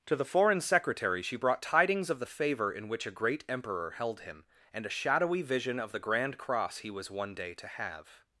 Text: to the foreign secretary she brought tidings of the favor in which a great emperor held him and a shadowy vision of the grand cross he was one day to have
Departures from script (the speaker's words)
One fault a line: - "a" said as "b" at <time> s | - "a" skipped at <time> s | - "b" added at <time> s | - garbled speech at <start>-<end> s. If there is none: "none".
none